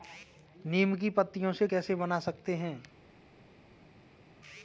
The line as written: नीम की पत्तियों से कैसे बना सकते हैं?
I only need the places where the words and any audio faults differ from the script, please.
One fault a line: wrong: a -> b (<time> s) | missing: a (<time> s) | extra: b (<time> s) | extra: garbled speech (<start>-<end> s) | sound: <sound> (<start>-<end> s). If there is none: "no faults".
no faults